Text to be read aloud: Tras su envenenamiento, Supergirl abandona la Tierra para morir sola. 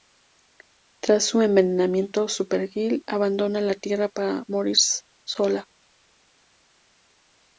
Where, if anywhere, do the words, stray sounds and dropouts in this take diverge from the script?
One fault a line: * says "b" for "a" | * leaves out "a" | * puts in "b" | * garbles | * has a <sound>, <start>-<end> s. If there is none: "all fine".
all fine